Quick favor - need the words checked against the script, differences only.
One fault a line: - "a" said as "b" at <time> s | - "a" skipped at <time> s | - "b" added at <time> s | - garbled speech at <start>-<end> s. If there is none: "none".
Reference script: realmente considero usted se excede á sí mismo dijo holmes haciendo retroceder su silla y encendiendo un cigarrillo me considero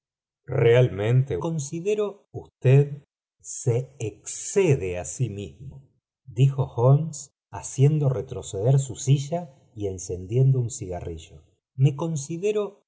none